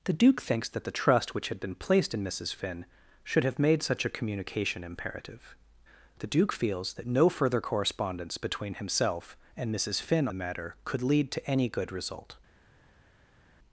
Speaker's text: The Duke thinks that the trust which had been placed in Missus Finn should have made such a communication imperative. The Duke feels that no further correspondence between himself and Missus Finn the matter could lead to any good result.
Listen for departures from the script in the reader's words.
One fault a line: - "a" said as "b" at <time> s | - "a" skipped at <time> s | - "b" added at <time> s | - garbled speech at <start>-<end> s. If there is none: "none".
none